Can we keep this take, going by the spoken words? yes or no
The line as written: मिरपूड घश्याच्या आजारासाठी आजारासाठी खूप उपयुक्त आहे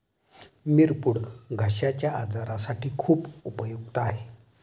no